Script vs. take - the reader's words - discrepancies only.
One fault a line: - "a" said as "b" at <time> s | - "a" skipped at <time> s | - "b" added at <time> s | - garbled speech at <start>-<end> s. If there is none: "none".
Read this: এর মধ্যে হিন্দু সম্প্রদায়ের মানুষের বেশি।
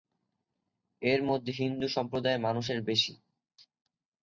none